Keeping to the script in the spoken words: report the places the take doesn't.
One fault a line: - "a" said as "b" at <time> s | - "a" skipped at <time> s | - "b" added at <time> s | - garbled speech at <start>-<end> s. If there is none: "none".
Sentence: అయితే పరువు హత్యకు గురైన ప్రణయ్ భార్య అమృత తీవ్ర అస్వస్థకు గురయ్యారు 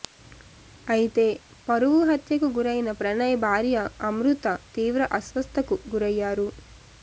none